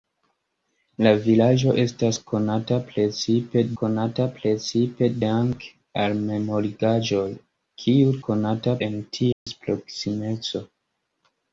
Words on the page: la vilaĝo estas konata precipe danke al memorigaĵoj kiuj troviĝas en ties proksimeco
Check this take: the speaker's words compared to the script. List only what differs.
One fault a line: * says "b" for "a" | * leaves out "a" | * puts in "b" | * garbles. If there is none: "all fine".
* puts in "konata precipe"
* says "konata" for "troviĝas"